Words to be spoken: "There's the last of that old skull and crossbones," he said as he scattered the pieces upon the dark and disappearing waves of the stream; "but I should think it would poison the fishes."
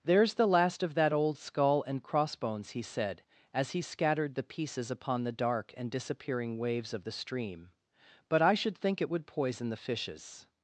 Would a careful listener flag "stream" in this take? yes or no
no